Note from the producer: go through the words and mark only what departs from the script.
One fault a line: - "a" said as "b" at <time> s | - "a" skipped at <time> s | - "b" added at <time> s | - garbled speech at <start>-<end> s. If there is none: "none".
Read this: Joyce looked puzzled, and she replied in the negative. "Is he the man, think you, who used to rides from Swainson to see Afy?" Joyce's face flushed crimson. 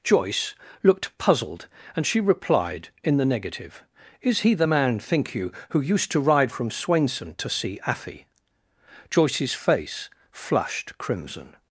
- "rides" said as "ride" at 6.2 s